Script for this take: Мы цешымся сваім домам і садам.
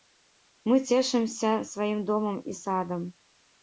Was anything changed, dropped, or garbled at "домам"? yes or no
no